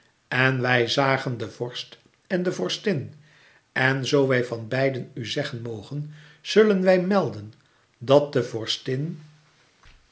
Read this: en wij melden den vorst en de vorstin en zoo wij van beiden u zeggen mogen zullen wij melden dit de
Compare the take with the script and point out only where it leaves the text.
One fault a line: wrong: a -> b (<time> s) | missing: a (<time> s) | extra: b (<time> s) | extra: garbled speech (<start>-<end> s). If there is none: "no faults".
wrong: melden -> zagen (0.9 s)
wrong: dit -> dat (8.0 s)